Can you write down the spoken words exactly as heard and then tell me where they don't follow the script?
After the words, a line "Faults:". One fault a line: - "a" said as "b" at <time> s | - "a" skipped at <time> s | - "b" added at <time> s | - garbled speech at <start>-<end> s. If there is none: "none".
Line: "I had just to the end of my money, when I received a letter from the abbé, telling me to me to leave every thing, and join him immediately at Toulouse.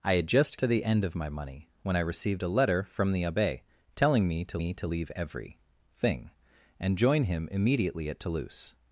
"I had just to the end of my money, when I received a letter from the abbé, telling me to me to leave every thing, and join him immediately at Toulouse.
Faults:
none